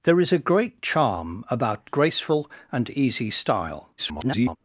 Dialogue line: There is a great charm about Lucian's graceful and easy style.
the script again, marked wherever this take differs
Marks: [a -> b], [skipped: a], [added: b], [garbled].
There is a great charm about [skipped: Lucian's] graceful and easy style. [garbled]